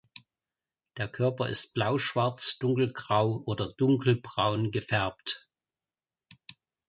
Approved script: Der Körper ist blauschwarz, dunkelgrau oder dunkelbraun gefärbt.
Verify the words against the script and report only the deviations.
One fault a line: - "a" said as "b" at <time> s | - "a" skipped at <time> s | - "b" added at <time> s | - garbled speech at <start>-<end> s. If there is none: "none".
none